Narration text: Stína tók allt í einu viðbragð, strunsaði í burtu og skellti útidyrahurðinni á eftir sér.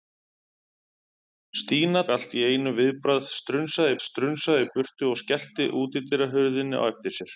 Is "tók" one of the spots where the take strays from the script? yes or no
yes